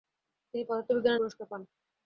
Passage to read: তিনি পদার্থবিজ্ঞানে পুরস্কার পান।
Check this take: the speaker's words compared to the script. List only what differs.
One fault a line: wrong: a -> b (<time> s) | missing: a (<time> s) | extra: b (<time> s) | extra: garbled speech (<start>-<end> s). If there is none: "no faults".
no faults